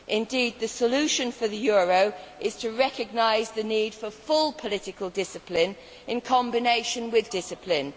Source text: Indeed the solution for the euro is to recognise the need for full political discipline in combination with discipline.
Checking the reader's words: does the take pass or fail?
pass